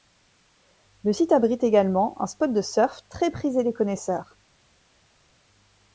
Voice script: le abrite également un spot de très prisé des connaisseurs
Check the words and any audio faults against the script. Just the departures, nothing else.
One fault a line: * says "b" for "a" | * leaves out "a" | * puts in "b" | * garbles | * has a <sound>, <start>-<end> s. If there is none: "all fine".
* puts in "site"
* puts in "surf"